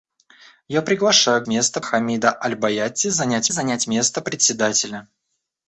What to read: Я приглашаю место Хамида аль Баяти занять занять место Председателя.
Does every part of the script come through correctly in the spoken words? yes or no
yes